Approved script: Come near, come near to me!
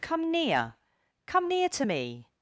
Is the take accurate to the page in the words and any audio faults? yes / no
yes